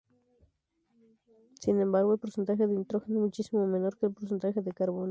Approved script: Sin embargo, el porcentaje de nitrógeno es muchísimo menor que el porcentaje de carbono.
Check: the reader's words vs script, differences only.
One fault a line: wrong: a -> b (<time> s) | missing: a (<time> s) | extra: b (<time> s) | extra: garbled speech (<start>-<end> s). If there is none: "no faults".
no faults